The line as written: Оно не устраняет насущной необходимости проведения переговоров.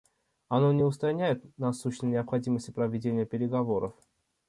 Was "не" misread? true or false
false